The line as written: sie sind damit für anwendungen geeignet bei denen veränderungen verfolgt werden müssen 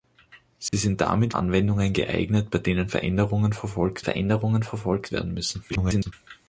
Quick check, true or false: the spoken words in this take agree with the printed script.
false